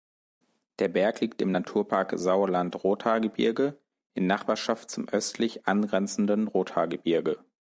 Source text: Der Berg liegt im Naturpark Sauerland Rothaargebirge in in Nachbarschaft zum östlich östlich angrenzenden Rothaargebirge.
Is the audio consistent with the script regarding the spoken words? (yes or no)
no